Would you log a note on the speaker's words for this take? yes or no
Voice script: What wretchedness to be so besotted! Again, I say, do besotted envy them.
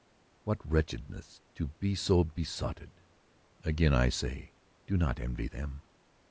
yes